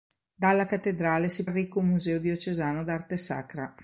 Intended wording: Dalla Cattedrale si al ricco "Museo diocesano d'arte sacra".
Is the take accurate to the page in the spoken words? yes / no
yes